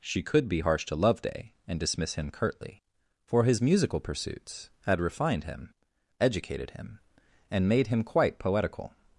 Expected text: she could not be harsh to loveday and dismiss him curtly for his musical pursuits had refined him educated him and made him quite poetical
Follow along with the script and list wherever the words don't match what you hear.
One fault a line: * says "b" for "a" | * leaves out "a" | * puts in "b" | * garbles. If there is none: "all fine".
* leaves out "not"